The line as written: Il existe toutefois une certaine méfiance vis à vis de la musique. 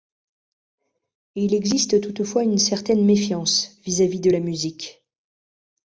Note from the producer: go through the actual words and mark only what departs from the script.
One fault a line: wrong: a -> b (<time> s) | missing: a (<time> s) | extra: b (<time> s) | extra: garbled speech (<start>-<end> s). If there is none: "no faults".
no faults